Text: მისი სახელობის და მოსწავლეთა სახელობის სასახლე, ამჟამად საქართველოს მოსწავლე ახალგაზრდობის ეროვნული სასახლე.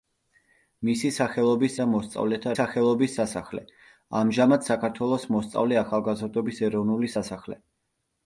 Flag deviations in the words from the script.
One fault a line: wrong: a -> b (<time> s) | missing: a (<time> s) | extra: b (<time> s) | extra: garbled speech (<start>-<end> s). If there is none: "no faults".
no faults